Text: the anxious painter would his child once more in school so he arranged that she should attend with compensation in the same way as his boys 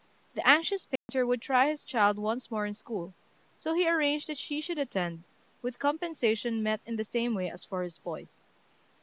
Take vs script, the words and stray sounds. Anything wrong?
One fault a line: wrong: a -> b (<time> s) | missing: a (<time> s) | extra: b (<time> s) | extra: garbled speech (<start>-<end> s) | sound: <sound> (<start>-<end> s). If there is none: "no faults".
sound: dropout (1.0-1.1 s)
extra: try (1.4 s)
extra: met (6.6 s)
extra: for (7.7 s)